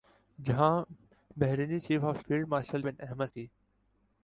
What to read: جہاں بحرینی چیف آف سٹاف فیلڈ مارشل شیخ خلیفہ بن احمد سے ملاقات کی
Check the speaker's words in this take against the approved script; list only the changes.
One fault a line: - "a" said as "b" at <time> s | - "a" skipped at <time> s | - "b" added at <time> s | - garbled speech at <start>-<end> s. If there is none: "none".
- "سٹاف" skipped at 2.2 s
- "شیخ خلیفہ" skipped at 2.8 s
- "سے ملاقات" skipped at 3.3 s